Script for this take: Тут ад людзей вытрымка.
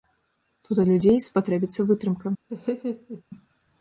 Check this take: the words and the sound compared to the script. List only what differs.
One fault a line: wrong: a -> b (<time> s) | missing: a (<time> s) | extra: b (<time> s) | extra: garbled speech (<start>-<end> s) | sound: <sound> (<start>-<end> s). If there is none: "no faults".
extra: спатрэбіцца (1.3 s)
sound: laugh (2.5-3.2 s)